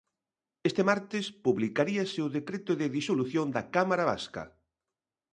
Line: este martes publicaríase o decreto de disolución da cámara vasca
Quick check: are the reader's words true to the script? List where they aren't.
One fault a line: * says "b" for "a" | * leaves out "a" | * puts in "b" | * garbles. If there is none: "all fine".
all fine